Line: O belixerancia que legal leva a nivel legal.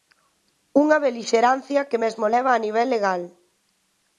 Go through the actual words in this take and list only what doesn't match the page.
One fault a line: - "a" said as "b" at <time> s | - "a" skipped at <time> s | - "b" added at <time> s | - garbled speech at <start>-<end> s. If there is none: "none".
- "O" said as "Unha" at 0.8 s
- "legal" said as "mesmo" at 2.0 s